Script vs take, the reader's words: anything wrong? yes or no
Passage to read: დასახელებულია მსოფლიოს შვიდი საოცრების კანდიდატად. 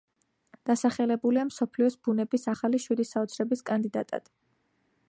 yes